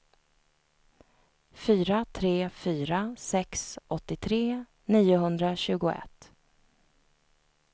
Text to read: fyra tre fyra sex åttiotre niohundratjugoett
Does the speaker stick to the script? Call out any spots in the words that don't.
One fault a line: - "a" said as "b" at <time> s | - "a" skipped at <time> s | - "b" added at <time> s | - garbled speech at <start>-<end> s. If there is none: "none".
none